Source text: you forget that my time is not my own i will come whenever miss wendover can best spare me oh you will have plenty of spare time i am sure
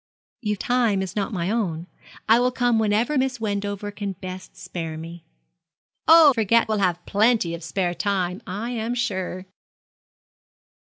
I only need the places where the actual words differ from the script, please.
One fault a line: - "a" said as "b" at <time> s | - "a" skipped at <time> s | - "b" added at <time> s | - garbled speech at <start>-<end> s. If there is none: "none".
- "forget that my" skipped at 0.6 s
- "you" said as "forget" at 6.3 s